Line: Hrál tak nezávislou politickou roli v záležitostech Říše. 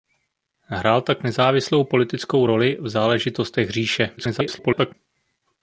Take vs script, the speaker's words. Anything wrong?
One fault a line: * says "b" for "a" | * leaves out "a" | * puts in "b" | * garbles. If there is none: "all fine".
* garbles